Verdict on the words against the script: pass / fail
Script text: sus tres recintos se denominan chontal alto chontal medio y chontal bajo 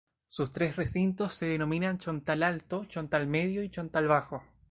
pass